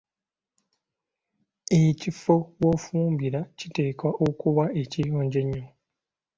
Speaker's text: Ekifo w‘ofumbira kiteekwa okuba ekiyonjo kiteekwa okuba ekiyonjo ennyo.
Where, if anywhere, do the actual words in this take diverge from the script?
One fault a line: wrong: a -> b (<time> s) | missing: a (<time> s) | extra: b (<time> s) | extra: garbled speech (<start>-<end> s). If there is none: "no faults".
missing: kiteekwa okuba ekiyonjo (5.4 s)